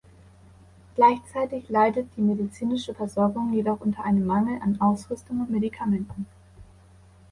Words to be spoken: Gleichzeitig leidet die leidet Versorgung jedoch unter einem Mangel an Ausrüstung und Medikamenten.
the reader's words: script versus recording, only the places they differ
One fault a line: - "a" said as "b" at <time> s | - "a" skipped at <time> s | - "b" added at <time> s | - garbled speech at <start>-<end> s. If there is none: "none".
- "leidet" said as "medizinische" at 2.2 s